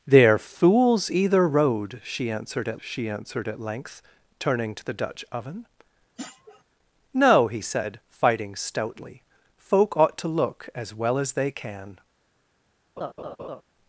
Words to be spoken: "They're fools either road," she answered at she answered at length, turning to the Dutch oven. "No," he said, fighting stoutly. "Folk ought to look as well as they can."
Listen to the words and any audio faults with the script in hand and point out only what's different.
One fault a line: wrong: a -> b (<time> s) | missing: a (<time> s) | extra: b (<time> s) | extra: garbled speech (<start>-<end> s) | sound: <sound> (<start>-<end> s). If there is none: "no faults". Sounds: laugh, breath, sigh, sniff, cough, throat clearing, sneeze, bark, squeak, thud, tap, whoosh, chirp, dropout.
sound: sniff (6.2-6.6 s)
sound: laugh (13.0-13.6 s)